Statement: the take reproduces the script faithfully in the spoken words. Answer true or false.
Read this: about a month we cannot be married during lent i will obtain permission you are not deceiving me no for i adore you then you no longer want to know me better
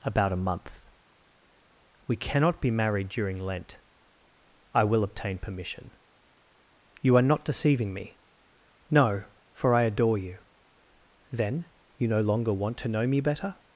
true